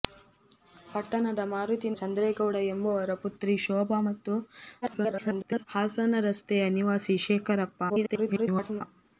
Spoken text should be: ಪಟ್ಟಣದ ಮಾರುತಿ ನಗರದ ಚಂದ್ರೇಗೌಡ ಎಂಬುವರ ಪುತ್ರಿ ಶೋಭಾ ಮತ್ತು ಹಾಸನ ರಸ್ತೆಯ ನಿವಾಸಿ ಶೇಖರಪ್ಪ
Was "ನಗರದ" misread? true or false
true